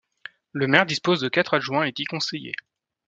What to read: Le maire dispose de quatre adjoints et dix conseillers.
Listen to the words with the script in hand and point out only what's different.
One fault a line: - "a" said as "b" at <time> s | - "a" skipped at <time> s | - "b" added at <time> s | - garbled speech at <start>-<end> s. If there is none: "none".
none